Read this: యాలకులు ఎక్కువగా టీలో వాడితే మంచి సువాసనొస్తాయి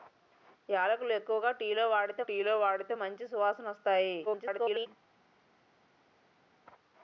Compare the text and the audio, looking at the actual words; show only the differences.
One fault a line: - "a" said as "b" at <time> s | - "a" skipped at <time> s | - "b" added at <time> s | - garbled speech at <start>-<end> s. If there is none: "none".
- "టీలో వాడితే" added at 2.2 s
- garbled speech at 4.2-4.9 s